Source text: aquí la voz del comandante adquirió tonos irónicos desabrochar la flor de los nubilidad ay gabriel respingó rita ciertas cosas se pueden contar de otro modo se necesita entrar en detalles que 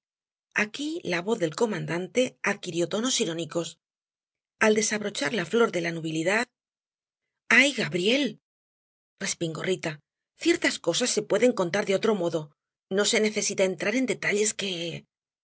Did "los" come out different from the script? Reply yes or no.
yes